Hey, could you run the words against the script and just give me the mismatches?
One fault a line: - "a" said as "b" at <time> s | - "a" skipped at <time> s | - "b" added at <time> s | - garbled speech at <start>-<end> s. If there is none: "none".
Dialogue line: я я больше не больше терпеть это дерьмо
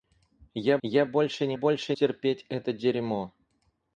none